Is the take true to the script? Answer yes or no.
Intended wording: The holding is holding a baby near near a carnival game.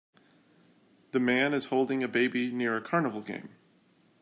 no